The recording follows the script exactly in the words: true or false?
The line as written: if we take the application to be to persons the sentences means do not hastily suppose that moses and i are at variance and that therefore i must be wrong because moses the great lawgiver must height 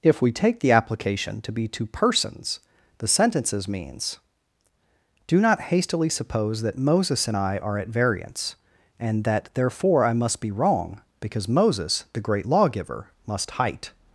true